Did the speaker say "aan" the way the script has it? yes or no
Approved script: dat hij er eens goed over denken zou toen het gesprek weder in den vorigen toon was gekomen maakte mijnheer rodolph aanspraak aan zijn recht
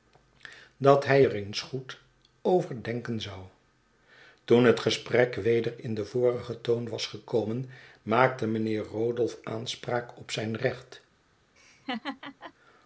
no